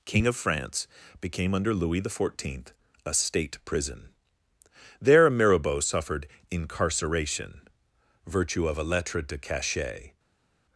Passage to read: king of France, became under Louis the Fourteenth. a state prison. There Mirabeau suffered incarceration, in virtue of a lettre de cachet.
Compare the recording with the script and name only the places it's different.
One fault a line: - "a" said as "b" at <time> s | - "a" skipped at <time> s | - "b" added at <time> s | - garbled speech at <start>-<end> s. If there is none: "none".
- "in" skipped at 7.7 s